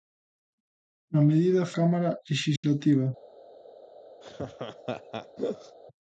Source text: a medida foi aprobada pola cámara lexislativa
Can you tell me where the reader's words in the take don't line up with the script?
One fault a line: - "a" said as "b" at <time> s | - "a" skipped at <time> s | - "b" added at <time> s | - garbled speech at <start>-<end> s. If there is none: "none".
- "foi aprobada pola" skipped at 1.7 s